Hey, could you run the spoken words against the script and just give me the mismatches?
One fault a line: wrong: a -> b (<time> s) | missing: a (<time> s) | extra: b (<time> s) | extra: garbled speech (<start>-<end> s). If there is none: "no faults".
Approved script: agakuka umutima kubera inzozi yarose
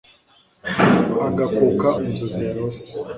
missing: umutima kubera (1.9 s)